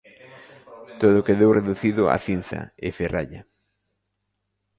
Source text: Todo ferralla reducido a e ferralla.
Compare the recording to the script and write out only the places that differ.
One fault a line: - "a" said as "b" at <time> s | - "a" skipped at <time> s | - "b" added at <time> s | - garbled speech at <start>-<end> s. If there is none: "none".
- "ferralla" said as "quedou" at 1.3 s
- "cinza" added at 2.3 s